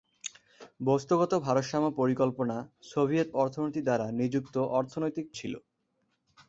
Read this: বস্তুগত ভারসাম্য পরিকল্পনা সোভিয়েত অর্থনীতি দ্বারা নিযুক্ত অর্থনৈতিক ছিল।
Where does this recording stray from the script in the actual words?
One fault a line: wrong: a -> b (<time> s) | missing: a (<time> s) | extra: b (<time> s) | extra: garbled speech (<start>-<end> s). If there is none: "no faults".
no faults